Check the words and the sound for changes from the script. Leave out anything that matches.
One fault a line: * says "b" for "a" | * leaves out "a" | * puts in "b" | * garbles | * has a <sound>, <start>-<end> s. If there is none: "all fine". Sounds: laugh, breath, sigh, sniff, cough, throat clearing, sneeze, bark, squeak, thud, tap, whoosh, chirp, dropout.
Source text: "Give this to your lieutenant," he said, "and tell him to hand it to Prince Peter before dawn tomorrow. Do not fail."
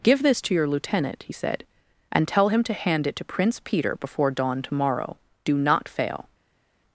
all fine